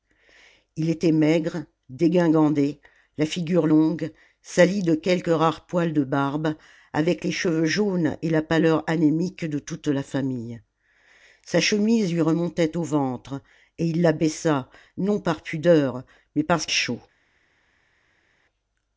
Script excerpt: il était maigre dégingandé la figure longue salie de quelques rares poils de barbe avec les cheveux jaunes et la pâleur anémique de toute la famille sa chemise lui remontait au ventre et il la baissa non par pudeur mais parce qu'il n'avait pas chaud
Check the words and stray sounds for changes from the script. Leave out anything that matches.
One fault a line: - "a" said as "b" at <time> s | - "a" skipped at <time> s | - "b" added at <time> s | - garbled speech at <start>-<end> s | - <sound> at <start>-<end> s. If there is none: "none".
- "qu'il n'avait pas" skipped at 16.7 s